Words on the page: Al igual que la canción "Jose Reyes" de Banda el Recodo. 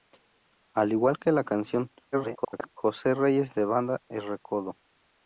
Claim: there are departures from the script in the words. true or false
true